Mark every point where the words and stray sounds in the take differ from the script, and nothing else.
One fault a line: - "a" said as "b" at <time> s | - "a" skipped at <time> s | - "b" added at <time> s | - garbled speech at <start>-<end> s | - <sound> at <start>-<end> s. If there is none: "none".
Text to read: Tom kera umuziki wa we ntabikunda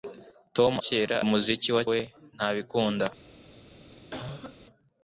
- cough at 4.1-4.6 s